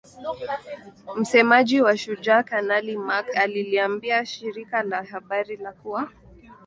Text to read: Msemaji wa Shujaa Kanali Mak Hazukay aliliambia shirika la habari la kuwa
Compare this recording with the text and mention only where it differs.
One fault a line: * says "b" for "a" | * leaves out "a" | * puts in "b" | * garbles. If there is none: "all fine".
* leaves out "Hazukay"